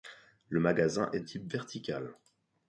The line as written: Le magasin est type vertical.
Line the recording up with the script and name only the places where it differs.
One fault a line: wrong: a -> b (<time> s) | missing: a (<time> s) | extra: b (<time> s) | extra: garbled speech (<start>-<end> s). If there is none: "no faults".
no faults